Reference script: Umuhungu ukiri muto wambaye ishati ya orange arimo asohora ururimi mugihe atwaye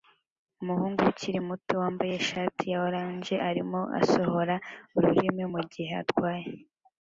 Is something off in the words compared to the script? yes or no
no